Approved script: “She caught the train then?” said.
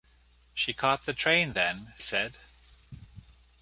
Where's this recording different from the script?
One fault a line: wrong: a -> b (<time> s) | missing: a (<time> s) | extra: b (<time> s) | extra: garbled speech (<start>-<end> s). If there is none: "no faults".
no faults